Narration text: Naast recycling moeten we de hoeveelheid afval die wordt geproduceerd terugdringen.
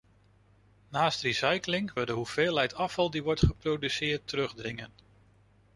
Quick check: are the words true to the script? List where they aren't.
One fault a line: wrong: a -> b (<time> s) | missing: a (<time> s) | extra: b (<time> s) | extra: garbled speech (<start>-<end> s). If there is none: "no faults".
missing: moeten (1.9 s)